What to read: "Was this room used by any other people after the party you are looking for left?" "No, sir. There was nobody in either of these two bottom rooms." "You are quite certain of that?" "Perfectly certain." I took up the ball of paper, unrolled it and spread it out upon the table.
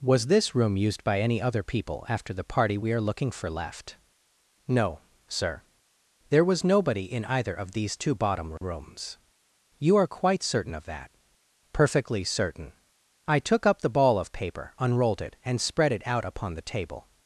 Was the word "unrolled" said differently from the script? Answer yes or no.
no